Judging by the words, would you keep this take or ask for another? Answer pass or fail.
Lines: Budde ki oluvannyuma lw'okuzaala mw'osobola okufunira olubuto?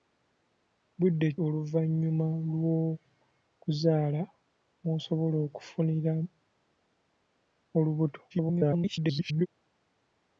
fail